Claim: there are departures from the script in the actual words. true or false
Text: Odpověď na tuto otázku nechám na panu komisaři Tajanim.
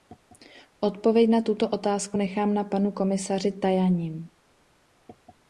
false